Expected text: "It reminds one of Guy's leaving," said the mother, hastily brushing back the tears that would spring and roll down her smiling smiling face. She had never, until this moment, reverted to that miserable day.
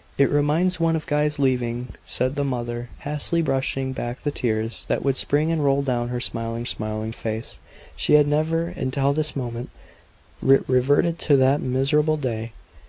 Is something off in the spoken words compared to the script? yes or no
no